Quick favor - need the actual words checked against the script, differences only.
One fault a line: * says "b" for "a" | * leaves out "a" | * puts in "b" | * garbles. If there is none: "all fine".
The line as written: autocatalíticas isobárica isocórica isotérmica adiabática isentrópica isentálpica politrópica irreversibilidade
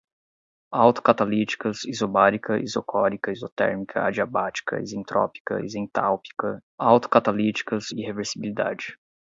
* says "autocatalíticas" for "politrópica"